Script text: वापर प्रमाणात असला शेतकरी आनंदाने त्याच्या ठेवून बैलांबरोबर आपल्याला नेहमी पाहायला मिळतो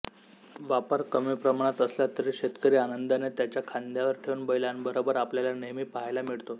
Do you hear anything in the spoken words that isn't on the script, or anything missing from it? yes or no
yes